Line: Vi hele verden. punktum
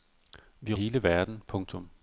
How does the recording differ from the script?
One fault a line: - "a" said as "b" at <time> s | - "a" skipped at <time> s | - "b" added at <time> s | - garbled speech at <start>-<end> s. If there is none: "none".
none